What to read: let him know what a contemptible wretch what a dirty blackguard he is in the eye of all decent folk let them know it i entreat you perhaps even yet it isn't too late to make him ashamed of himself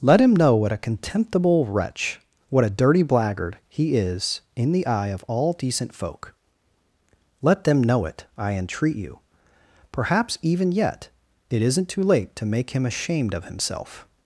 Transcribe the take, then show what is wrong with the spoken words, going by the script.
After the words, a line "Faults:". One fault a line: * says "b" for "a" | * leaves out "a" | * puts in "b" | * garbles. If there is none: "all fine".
let him know what a contemptible wretch what a dirty blackguard he is in the eye of all decent folk let them know it i entreat you perhaps even yet it isn't too late to make him ashamed of himself
Faults:
all fine